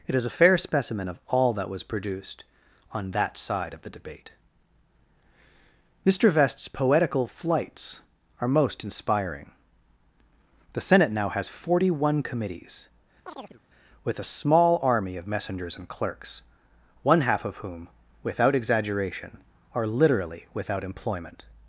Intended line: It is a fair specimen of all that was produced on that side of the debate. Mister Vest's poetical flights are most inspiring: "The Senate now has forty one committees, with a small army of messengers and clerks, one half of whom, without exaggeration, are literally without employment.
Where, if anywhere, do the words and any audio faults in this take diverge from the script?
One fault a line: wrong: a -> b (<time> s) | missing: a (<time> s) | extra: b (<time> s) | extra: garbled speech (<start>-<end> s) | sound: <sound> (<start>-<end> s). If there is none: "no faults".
sound: chirp (13.2-13.6 s)